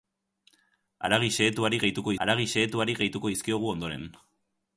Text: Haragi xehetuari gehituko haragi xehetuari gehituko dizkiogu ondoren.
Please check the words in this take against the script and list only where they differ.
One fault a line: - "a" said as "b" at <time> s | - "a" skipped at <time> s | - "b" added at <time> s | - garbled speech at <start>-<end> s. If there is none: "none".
none